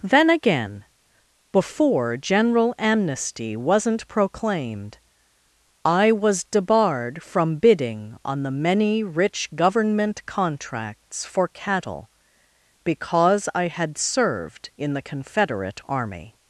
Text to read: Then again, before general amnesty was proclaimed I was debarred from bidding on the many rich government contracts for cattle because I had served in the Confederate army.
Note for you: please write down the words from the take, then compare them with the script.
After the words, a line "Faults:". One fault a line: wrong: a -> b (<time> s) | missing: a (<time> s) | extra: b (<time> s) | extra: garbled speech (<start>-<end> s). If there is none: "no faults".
Then again, before general amnesty wasn't proclaimed I was debarred from bidding on the many rich government contracts for cattle because I had served in the Confederate army.
Faults:
wrong: was -> wasn't (3.5 s)